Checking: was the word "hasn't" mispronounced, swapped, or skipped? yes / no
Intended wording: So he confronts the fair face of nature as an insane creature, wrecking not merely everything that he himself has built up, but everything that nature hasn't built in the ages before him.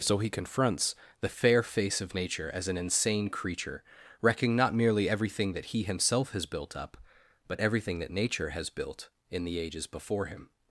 yes